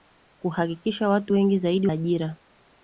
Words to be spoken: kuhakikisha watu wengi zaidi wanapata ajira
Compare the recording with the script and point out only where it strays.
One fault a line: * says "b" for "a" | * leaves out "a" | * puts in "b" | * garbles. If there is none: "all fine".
* leaves out "wanapata"